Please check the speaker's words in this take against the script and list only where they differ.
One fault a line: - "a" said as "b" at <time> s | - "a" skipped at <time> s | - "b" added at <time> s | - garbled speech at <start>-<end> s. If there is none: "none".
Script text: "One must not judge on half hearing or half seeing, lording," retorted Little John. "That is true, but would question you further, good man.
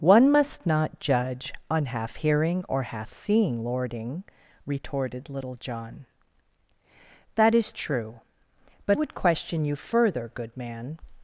none